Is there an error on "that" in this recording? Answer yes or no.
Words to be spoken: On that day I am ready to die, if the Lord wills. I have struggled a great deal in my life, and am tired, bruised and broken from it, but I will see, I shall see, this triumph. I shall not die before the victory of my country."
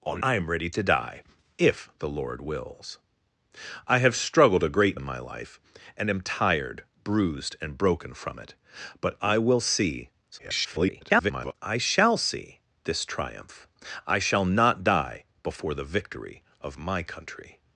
yes